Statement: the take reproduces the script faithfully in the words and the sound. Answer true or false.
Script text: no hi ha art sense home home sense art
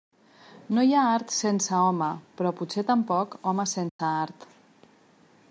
false